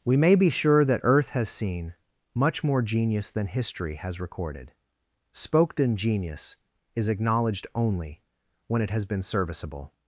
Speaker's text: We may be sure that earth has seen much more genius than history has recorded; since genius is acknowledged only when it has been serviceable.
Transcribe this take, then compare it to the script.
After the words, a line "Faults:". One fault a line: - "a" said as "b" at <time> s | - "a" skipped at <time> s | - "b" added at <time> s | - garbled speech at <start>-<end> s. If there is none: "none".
We may be sure that earth has seen much more genius than history has recorded; spoken genius is acknowledged only when it has been serviceable.
Faults:
- "since" said as "spoken" at 5.3 s